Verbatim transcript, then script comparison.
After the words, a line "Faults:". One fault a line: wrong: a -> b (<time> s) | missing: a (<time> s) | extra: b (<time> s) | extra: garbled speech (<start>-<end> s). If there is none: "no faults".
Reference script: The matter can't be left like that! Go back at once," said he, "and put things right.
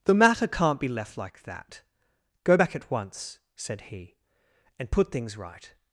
The matter can't be left like that! Go back at once," said he, "and put things right.
Faults:
no faults